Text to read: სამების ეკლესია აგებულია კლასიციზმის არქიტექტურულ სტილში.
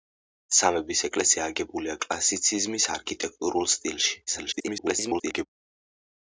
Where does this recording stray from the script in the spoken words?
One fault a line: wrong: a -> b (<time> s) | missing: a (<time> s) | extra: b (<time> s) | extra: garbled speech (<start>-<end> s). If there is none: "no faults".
extra: garbled speech (4.3-5.5 s)